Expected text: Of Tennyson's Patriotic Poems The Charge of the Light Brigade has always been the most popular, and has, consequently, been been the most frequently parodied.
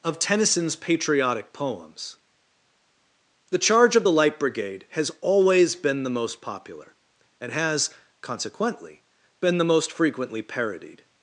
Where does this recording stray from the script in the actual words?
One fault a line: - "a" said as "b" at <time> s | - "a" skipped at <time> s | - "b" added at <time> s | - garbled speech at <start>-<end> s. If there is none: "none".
- "been" skipped at 9.6 s